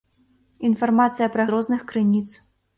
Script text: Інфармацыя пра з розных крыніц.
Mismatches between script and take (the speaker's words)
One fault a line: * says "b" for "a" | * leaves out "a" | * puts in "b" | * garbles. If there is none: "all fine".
all fine